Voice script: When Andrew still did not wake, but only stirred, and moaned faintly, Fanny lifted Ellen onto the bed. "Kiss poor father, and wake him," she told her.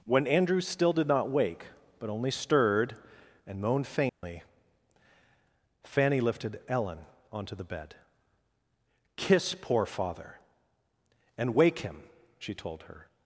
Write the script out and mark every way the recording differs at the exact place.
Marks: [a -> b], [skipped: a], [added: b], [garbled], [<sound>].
When Andrew still did not wake, but only stirred, and moaned faintly, [dropout] Fanny lifted Ellen onto the bed. "Kiss poor father, and wake him," she told her.